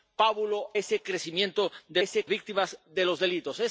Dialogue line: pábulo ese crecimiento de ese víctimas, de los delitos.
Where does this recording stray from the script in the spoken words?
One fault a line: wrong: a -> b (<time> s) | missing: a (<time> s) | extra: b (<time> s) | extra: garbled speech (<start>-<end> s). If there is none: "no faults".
no faults